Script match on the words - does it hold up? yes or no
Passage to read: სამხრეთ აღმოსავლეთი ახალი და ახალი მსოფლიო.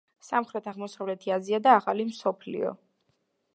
no